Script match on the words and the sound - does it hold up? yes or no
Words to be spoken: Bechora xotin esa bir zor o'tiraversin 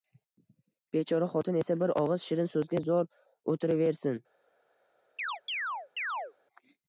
no